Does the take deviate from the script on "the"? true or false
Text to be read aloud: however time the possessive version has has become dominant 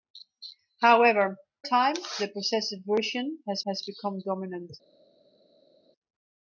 false